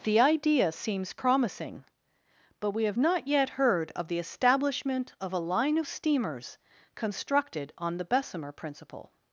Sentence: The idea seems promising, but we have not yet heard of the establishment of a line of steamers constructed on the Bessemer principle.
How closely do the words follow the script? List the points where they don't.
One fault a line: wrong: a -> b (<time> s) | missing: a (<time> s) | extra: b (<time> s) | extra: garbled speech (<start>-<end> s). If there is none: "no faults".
no faults